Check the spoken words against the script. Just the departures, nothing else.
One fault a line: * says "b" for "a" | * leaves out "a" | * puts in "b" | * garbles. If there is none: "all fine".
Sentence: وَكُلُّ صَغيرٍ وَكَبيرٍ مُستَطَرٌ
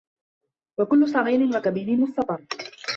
all fine